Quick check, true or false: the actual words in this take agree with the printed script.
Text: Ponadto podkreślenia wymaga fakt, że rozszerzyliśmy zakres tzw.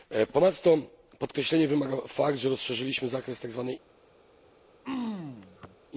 true